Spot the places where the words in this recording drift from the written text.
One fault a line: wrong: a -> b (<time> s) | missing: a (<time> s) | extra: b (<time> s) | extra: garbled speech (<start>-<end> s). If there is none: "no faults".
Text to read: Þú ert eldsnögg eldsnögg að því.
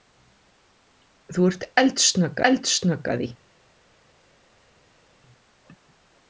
no faults